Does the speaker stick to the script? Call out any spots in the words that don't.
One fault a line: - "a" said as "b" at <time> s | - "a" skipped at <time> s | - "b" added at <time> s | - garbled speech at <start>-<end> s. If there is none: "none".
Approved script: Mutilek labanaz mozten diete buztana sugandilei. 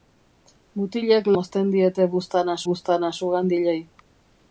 - "labanaz" skipped at 1.3 s
- "buztana" added at 2.7 s